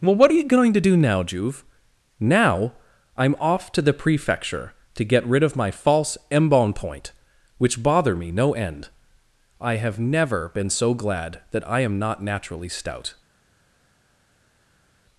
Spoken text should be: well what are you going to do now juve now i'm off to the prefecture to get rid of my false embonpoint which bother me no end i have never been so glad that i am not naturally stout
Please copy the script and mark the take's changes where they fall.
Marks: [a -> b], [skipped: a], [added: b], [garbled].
well what are you going to do now juve now i'm off to the prefecture to get rid of my false embonpoint which bother me no end i have never been so glad that i am not naturally stout